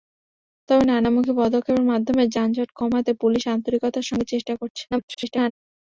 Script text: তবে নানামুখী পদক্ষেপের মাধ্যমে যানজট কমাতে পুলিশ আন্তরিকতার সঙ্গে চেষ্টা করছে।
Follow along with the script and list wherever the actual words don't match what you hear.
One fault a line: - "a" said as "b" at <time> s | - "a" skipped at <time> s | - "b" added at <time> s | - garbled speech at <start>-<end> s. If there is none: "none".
- garbled speech at 4.9-5.5 s